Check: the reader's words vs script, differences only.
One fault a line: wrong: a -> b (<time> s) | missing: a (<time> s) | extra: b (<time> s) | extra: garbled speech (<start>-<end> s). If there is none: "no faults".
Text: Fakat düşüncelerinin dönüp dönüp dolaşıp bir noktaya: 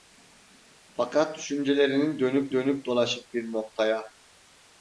no faults